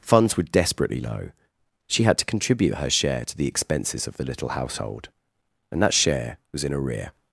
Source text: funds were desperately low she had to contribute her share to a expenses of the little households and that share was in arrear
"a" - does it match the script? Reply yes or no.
no